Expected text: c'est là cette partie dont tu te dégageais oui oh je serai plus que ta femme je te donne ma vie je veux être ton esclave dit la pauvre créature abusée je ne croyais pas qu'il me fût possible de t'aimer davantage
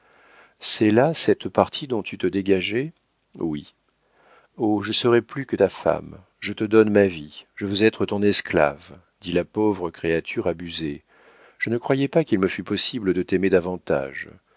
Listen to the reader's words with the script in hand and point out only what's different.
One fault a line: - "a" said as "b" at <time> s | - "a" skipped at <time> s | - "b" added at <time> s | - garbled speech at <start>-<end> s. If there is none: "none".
none